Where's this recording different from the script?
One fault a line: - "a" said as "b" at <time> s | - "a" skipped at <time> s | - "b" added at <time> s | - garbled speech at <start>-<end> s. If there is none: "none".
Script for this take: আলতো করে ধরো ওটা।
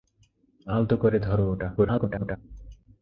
- garbled speech at 1.8-2.4 s